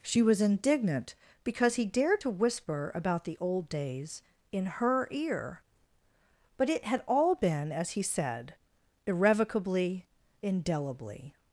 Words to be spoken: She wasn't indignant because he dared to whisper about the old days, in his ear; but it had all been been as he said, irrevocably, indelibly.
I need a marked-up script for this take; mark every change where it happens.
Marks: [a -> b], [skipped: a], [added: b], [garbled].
She [wasn't -> was] indignant because he dared to whisper about the old days, in [his -> her] ear; but it had all been [skipped: been] as he said, irrevocably, indelibly.